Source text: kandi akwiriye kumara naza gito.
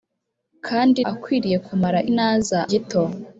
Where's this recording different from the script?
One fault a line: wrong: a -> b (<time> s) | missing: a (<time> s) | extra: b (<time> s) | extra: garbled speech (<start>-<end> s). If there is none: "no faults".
no faults